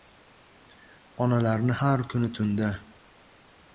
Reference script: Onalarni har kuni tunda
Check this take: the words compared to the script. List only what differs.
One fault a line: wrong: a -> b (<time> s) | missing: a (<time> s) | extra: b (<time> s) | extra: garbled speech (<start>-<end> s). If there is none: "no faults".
no faults